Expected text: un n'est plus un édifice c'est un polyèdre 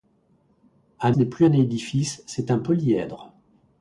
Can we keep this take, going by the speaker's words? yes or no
yes